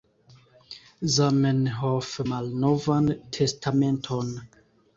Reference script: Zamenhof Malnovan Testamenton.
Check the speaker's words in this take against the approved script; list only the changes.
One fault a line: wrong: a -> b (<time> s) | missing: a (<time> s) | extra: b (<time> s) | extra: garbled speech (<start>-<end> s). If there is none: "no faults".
no faults